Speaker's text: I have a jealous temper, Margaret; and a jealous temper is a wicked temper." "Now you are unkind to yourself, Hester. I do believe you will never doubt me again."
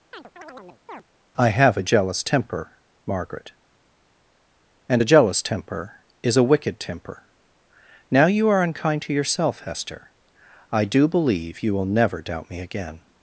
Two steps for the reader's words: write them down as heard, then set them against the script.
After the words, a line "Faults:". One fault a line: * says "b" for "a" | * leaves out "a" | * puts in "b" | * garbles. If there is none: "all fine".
I have a jealous temper, Margaret; and a jealous temper is a wicked temper." "Now you are unkind to yourself, Hester. I do believe you will never doubt me again."
Faults:
all fine